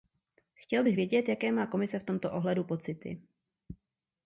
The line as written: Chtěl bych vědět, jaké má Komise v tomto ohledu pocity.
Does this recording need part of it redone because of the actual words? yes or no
no